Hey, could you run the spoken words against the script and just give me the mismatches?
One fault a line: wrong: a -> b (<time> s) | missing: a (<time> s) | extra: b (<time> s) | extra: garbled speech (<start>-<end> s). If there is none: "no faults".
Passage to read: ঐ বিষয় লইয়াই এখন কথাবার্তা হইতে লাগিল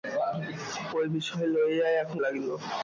missing: কথাবার্তা হইতে (2.2 s)